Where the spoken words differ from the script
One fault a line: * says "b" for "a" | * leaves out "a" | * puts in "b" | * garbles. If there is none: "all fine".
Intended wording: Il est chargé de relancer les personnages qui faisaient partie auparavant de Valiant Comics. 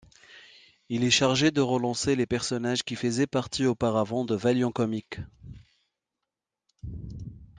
all fine